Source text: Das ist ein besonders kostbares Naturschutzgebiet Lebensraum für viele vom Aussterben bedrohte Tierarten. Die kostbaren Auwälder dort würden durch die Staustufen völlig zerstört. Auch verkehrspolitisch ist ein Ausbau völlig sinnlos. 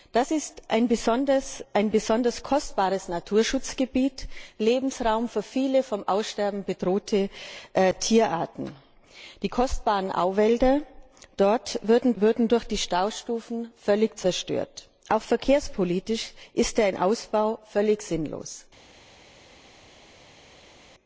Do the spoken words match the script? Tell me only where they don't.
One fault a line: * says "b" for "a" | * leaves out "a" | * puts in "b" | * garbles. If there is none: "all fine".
* puts in "würden"